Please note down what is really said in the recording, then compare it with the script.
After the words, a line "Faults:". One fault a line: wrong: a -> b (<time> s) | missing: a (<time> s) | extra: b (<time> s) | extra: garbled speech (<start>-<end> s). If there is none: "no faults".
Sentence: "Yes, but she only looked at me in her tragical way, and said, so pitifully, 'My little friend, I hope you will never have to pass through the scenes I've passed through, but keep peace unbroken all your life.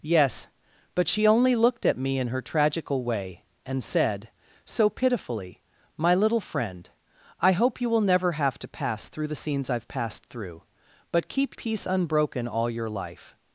"Yes, but she only looked at me in her tragical way, and said, so pitifully, 'My little friend, I hope you will never have to pass through the scenes I've passed through, but keep peace unbroken all your life.
Faults:
no faults